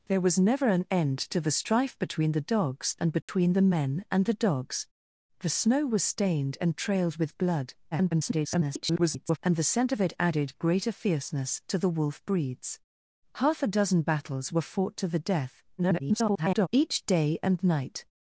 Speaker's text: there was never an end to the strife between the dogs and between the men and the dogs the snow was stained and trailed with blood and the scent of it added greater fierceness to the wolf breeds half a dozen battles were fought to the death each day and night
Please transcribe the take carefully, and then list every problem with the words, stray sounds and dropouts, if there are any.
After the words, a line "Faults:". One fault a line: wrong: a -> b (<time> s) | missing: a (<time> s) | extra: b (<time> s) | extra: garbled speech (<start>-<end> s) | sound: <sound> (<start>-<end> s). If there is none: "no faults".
there was never an end to the strife between the dogs and between the men and the dogs the snow was stained and trailed with blood [garbled] and the scent of it added greater fierceness to the wolf breeds half a dozen battles were fought to the death [garbled] each day and night
Faults:
sound: dropout (3.2-3.3 s)
extra: garbled speech (7.9-9.4 s)
extra: garbled speech (15.8-16.7 s)